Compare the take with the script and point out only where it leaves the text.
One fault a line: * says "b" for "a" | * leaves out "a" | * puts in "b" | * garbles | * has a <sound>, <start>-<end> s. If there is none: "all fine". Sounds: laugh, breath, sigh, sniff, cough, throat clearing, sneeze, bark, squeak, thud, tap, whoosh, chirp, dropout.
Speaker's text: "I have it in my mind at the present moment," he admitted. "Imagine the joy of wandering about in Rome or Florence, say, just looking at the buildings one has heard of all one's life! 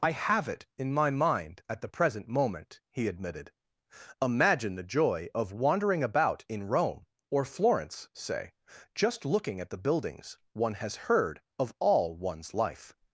all fine